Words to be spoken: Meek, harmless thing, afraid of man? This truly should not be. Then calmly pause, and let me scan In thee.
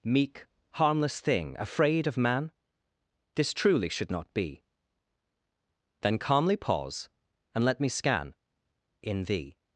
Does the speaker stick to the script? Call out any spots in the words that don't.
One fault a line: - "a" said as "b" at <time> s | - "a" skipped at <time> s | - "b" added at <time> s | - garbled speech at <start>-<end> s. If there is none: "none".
none